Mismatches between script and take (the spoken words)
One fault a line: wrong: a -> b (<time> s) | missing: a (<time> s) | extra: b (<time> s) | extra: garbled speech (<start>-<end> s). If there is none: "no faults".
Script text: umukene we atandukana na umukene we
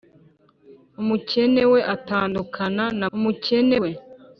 no faults